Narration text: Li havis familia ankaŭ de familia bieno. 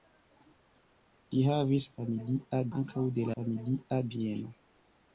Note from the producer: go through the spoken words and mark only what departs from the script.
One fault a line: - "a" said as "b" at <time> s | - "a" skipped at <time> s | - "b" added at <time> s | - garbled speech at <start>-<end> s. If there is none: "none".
none